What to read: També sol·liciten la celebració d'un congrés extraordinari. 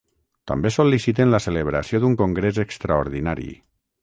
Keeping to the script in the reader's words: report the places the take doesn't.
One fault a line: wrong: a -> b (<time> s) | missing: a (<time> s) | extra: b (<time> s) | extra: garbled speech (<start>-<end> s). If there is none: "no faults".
no faults